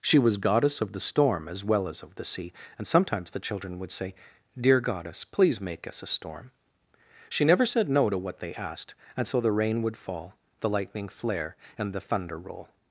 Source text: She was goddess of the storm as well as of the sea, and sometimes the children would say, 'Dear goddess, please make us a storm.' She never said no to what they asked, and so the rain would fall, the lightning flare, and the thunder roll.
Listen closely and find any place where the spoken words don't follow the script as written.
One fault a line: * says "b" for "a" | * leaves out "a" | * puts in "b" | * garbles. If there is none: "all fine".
all fine